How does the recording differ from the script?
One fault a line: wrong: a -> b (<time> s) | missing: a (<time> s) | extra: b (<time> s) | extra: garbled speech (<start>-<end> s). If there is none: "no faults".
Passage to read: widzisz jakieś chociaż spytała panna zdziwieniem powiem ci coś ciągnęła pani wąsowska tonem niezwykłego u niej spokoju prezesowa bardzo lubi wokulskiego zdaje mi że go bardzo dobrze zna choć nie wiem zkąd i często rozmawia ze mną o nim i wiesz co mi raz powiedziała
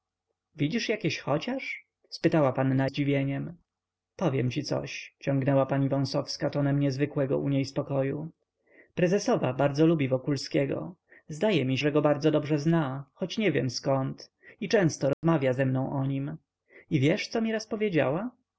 no faults